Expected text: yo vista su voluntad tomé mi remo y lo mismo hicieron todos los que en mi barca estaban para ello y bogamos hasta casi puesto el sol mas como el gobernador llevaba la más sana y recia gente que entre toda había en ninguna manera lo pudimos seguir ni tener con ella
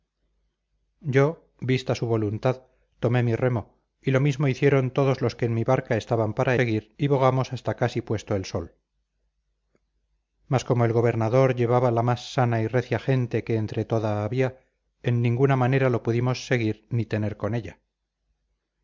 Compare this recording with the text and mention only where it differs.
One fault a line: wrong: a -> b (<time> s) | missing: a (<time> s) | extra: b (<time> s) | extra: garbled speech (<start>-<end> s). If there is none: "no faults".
wrong: ello -> seguir (6.5 s)